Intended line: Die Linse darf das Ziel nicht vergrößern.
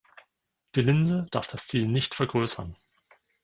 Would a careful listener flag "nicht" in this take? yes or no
no